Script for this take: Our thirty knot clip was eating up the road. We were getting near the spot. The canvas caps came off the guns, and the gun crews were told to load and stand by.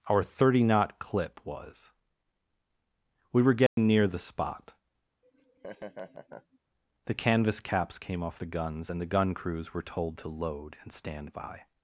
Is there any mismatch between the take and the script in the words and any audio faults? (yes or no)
yes